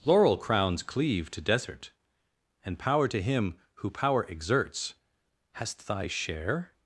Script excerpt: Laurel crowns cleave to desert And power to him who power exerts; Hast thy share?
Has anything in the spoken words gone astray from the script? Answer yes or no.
no